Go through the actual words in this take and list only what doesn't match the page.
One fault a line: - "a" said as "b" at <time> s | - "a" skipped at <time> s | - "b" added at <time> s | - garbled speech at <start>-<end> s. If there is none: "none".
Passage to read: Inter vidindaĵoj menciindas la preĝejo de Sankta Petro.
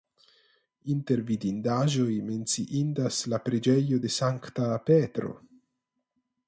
none